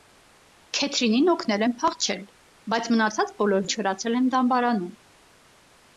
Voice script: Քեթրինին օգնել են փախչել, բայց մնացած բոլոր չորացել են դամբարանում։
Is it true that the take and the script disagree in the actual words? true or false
false